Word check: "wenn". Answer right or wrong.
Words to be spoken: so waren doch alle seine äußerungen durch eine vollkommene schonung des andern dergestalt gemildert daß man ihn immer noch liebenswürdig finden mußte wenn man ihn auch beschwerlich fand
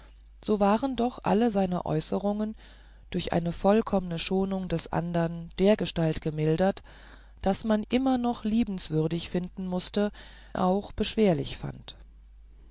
wrong